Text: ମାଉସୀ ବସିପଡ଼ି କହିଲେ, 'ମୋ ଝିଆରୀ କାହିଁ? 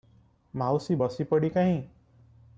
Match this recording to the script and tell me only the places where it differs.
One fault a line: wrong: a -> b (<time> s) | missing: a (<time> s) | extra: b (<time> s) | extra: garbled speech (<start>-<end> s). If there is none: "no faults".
missing: କହିଲେ ମୋ ଝିଆରୀ (1.5 s)